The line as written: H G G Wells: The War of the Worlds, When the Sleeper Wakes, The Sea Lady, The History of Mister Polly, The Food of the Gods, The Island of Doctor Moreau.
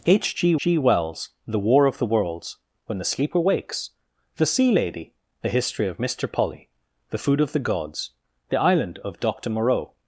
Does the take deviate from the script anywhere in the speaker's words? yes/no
no